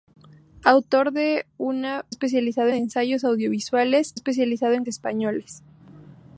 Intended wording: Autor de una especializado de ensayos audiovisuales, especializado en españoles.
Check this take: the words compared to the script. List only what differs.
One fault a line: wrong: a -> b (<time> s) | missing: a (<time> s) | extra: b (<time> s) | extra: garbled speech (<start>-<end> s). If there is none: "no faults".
no faults